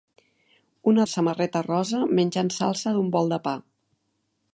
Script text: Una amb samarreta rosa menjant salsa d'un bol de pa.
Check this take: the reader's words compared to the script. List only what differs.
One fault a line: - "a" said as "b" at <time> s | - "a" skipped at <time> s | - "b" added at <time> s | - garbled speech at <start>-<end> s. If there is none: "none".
none